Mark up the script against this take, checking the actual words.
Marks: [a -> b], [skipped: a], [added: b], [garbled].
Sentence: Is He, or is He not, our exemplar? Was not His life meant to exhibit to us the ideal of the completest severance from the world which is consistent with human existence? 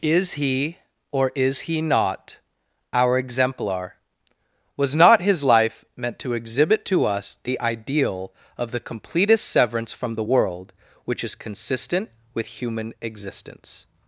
Is He, or is He not, our exemplar? Was not His life meant to exhibit to us the ideal of the completest severance from the world which is consistent with human existence?